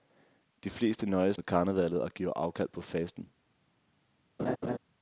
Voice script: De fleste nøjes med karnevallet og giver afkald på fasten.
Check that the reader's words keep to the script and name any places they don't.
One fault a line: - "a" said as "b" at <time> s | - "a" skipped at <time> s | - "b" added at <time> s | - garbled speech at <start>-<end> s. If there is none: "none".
none